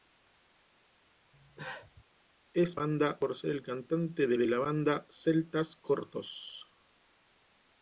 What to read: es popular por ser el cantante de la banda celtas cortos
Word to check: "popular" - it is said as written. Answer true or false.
false